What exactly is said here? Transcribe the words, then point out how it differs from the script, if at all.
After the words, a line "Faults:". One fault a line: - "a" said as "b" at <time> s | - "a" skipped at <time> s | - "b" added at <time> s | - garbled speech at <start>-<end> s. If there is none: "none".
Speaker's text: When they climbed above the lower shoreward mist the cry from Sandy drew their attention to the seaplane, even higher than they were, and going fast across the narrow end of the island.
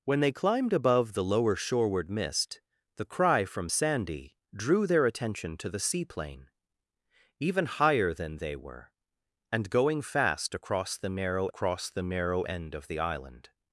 When they climbed above the lower shoreward mist the cry from Sandy drew their attention to the seaplane, even higher than they were, and going fast across the narrow across the narrow end of the island.
Faults:
- "across the narrow" added at 11.5 s